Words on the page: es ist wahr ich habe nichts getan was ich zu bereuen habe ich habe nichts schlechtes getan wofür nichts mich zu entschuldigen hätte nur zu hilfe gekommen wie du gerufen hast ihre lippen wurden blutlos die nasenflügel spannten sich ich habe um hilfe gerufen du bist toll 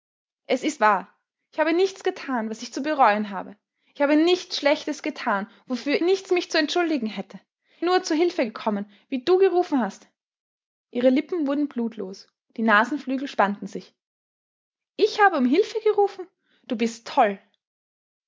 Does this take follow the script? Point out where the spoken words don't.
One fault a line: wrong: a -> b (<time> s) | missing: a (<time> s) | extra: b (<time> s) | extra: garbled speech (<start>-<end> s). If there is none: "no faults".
no faults